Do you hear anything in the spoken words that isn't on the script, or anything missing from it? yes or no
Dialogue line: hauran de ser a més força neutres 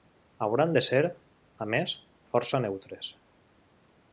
no